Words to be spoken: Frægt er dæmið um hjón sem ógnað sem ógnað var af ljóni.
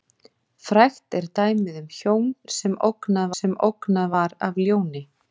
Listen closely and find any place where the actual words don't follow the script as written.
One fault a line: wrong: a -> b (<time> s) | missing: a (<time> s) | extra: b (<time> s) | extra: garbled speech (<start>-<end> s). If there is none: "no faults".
no faults